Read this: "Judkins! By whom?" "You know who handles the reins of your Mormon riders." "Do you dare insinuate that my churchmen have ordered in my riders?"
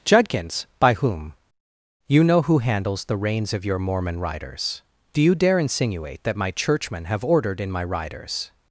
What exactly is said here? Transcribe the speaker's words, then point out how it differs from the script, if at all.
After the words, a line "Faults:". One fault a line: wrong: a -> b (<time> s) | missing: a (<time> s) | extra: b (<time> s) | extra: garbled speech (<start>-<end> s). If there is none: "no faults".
"Judkins! By whom?" "You know who handles the reins of your Mormon riders." "Do you dare insinuate that my churchmen have ordered in my riders?"
Faults:
no faults